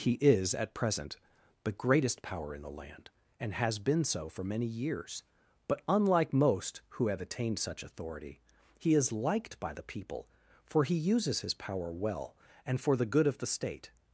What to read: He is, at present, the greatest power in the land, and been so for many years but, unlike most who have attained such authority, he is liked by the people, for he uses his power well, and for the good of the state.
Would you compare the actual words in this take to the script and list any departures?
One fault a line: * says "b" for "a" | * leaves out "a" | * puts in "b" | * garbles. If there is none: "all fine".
* puts in "has"